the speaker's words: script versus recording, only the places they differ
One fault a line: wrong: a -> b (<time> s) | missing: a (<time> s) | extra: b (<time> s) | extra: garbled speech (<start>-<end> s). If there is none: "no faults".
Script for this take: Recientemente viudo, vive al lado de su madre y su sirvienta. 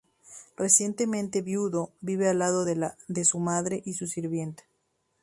no faults